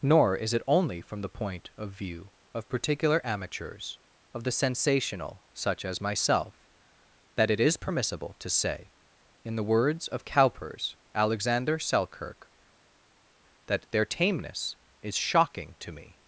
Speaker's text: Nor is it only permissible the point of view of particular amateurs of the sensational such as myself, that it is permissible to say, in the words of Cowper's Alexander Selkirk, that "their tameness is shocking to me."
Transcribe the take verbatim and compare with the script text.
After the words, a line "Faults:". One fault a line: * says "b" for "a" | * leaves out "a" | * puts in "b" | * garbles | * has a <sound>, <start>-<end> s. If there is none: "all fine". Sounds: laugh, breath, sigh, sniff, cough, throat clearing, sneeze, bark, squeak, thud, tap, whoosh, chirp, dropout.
Nor is it only from the point of view of particular amateurs of the sensational such as myself, that it is permissible to say, in the words of Cowper's Alexander Selkirk, that "their tameness is shocking to me."
Faults:
* says "from" for "permissible"